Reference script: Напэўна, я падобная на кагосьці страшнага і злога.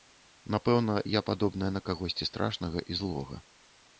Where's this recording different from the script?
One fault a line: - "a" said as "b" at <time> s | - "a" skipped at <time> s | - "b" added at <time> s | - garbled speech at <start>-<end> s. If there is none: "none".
none